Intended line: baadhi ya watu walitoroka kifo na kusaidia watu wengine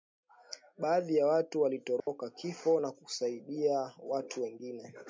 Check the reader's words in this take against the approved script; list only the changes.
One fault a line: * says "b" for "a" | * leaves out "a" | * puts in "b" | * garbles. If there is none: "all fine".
all fine